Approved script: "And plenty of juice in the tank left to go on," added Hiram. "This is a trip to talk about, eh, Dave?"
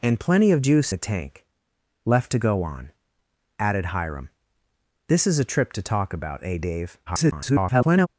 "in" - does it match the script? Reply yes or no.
no